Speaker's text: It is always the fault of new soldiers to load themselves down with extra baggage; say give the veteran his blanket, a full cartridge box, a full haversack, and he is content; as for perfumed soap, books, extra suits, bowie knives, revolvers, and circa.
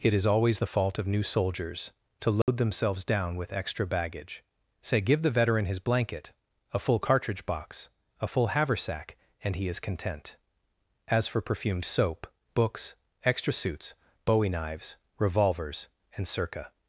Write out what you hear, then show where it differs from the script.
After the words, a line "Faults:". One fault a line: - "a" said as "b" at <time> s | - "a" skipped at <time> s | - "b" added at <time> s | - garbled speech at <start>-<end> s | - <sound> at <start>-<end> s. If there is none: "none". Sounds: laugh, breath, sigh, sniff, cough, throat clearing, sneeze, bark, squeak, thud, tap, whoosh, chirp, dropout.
It is always the fault of new soldiers to load themselves down with extra baggage; say give the veteran his blanket, a full cartridge box, a full haversack, and he is content; as for perfumed soap, books, extra suits, bowie knives, revolvers, and circa.
Faults:
- dropout at 2.4-2.5 s